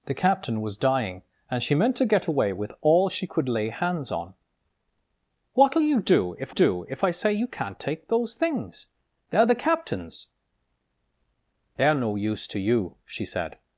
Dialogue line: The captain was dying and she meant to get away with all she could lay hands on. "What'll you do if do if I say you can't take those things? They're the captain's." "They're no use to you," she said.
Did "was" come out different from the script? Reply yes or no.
no